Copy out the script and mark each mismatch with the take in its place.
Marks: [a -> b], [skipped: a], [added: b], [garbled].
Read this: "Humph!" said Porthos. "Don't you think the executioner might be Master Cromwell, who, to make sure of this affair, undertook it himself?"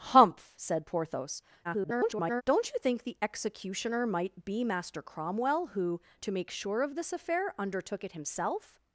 "Humph!" said Porthos. [garbled] "Don't you think the executioner might be Master Cromwell, who, to make sure of this affair, undertook it himself?"